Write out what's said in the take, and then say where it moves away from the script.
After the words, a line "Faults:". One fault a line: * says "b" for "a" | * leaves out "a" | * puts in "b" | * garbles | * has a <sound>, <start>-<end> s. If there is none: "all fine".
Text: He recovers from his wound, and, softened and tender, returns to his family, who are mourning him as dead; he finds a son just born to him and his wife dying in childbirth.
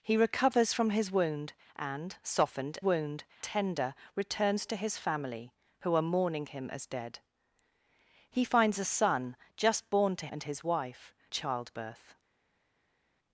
He recovers from his wound, and, softened wound tender, returns to his family, who are mourning him as dead; he finds a son just born to and his wife childbirth.
Faults:
* says "wound" for "and"
* leaves out "him"
* leaves out "dying in"